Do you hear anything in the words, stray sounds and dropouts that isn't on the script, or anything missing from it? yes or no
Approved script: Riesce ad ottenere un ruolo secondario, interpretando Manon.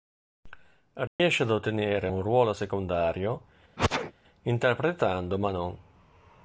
yes